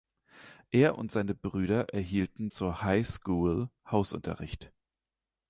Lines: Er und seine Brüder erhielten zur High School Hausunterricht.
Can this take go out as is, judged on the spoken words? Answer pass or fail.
pass